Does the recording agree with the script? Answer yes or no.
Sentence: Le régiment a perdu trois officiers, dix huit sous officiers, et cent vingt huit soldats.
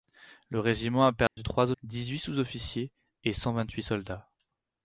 no